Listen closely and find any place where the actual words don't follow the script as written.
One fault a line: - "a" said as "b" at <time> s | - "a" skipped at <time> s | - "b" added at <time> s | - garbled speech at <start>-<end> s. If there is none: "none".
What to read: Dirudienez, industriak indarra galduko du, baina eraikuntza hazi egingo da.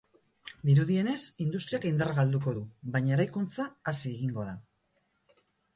none